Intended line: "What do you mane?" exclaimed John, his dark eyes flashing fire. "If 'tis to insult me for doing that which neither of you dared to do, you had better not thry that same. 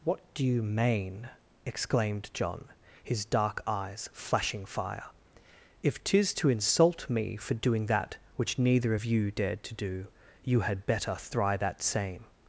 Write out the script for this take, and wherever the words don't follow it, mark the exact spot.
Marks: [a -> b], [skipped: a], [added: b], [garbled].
"What do you mane?" exclaimed John, his dark eyes flashing fire. "If 'tis to insult me for doing that which neither of you dared to do, you had better [skipped: not] thry that same.